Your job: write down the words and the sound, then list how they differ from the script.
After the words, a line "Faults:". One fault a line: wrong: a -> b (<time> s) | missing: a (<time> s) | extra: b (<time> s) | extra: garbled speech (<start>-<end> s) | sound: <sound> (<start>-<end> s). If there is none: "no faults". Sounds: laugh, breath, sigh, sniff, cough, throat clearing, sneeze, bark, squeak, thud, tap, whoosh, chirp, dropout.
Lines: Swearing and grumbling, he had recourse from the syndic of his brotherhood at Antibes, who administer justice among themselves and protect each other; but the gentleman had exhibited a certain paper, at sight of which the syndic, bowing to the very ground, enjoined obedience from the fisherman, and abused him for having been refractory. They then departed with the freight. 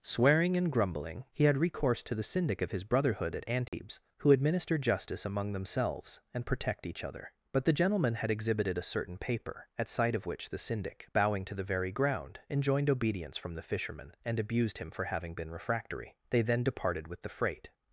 Swearing and grumbling, he had recourse to the syndic of his brotherhood at Antibes, who administer justice among themselves and protect each other; but the gentleman had exhibited a certain paper, at sight of which the syndic, bowing to the very ground, enjoined obedience from the fisherman, and abused him for having been refractory. They then departed with the freight.
Faults:
wrong: from -> to (2.0 s)
sound: dropout (3.7-3.7 s)